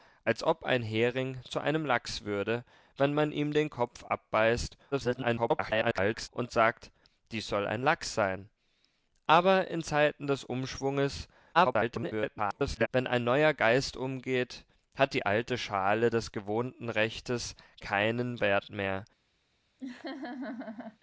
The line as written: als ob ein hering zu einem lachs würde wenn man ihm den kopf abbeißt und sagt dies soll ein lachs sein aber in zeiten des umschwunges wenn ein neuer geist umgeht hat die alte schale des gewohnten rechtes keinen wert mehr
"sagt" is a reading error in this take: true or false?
false